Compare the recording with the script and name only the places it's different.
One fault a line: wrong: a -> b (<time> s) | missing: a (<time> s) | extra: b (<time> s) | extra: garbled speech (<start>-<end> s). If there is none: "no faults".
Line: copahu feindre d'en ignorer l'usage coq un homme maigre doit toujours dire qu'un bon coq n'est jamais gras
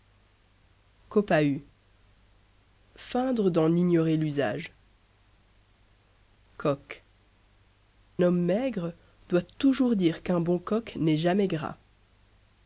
missing: un (7.0 s)